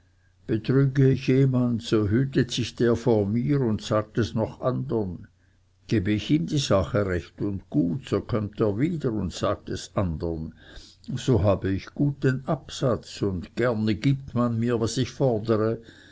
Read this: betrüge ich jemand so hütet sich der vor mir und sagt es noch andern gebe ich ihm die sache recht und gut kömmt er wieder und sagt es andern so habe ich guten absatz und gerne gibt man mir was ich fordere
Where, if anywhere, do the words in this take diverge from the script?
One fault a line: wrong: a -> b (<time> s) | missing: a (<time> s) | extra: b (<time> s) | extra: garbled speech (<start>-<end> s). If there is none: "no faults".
extra: so (8.1 s)